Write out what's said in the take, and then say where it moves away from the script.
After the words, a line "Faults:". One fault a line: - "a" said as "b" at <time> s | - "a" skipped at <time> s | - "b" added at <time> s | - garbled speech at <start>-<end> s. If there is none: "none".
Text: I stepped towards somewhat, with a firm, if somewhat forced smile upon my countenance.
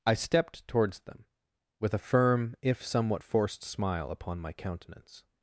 I stepped towards them, with a firm, if somewhat forced smile upon my countenance.
Faults:
- "somewhat" said as "them" at 1.0 s